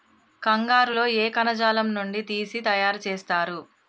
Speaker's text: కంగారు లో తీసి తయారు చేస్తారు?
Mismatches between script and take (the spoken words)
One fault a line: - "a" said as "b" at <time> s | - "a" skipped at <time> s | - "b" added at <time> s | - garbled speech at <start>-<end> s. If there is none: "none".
- "ఏ కణజాలం నుండి" added at 1.2 s